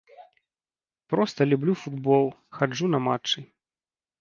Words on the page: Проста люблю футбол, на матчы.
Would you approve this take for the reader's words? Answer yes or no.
no